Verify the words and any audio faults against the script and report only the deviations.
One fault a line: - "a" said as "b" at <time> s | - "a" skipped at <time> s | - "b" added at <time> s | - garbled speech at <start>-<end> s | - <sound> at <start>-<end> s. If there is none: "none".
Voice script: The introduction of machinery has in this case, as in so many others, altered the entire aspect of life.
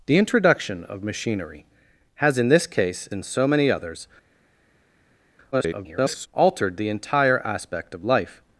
- "as" skipped at 3.1 s
- garbled speech at 5.5-6.3 s